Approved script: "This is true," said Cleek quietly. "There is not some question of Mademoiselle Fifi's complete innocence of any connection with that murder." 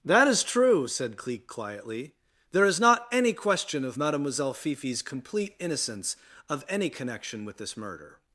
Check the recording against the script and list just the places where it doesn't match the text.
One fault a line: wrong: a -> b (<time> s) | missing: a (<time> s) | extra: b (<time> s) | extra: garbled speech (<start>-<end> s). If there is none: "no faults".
wrong: This -> That (0.0 s)
wrong: some -> any (3.1 s)
wrong: that -> this (7.6 s)